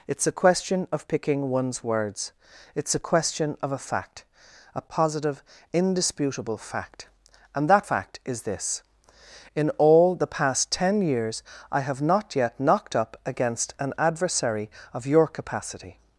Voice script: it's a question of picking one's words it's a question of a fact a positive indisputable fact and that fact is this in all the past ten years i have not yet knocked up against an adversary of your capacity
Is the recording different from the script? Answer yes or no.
no